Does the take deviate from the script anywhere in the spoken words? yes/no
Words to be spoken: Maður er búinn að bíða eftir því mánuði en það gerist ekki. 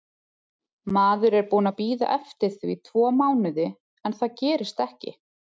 yes